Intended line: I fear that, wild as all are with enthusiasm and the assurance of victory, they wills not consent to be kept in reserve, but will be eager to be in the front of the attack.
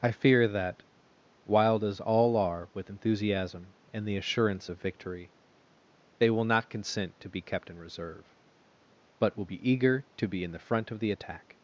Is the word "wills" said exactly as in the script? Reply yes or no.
no